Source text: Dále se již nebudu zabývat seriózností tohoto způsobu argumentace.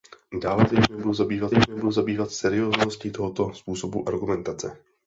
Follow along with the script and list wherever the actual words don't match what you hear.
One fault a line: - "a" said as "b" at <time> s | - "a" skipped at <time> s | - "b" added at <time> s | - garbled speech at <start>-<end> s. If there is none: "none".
- "již nebudu zabývat" added at 1.5 s